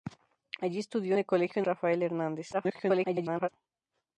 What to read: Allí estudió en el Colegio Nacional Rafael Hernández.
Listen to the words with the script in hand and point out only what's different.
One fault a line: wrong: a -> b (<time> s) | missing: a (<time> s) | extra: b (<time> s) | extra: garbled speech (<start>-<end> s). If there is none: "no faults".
missing: en (1.1 s)
missing: Nacional (1.6 s)
extra: garbled speech (2.5-3.5 s)